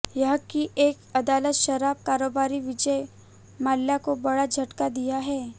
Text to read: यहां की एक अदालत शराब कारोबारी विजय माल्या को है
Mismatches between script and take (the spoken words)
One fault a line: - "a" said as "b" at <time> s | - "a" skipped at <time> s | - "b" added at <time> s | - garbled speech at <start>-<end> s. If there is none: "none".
- "बड़ा झटका दिया" added at 4.2 s